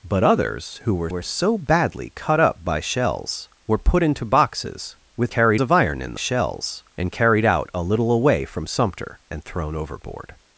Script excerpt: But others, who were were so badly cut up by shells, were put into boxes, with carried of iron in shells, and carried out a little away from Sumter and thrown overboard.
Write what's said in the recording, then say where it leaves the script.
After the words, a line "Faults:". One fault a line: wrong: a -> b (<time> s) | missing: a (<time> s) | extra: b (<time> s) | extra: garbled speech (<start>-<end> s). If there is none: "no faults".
But others, who were were so badly cut up by shells, were put into boxes, with carried of iron in shells, and carried out a little away from Sumter and thrown overboard.
Faults:
no faults